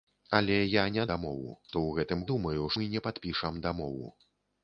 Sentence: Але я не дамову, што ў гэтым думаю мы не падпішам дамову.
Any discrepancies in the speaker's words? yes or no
no